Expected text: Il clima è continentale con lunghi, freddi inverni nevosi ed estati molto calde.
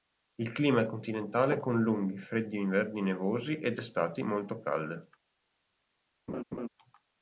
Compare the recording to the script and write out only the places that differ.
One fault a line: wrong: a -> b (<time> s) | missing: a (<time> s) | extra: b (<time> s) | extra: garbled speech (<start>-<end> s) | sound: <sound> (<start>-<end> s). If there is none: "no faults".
sound: laugh (6.3-6.7 s)